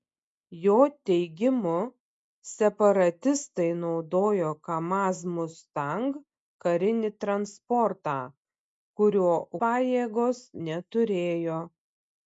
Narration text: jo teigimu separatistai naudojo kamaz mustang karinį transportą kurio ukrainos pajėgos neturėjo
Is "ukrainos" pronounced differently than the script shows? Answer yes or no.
yes